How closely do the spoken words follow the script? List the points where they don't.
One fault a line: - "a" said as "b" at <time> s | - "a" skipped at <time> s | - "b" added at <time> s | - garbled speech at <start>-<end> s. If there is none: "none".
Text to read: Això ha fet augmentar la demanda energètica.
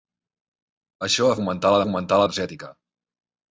- "fet" skipped at 1.4 s
- "demanda" said as "augmentar" at 1.8 s